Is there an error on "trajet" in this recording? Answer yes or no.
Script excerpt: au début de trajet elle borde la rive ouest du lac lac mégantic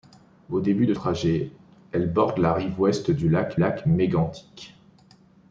no